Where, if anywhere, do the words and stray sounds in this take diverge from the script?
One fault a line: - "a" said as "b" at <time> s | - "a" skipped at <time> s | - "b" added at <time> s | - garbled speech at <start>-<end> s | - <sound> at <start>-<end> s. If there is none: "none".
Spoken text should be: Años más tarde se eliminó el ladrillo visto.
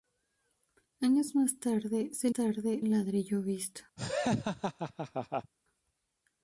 - "eliminó" said as "tarde" at 2.3 s
- laugh at 4.0-5.5 s